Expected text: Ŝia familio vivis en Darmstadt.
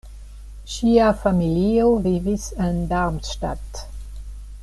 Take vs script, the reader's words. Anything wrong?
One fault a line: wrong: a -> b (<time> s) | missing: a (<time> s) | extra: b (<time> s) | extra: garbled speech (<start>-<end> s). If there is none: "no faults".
no faults